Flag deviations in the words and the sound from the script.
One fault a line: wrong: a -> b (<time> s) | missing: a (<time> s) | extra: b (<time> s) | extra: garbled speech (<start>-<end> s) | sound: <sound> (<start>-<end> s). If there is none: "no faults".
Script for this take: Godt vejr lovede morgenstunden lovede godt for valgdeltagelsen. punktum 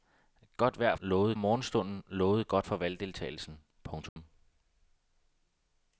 sound: dropout (4.1-4.2 s)